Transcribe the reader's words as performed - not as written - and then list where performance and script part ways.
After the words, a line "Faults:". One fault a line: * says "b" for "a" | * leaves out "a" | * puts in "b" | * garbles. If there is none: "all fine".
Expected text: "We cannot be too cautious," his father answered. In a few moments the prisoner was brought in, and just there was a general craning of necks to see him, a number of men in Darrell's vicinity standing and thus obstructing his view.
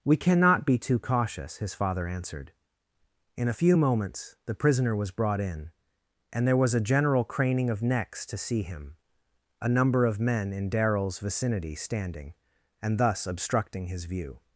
"We cannot be too cautious," his father answered. In a few moments the prisoner was brought in, and there was a general craning of necks to see him, a number of men in Darrell's vicinity standing and thus obstructing his view.
Faults:
* leaves out "just"